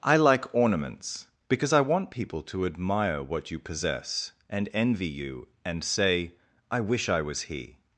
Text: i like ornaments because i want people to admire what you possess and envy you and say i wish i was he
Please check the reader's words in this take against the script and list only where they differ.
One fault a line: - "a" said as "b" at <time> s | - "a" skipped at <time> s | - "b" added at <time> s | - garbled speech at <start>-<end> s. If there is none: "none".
none